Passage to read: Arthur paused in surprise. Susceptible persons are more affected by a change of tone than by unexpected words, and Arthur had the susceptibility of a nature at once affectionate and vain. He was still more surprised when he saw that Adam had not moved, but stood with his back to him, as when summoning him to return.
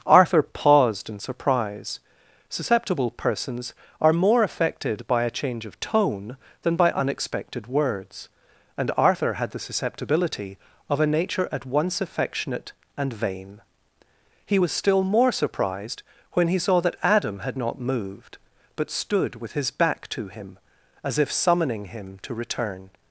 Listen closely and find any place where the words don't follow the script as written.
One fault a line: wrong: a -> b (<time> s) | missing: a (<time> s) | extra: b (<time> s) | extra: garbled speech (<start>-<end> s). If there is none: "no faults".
wrong: when -> if (21.2 s)